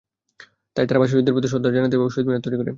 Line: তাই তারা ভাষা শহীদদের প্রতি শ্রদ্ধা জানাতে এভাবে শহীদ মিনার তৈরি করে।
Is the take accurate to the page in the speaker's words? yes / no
yes